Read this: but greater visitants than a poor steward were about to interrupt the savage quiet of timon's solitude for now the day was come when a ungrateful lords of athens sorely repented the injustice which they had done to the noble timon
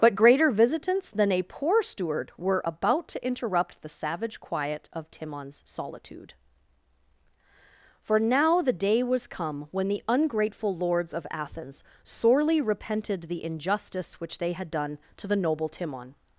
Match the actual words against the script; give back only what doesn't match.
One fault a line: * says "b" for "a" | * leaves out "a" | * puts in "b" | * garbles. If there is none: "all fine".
* says "the" for "a"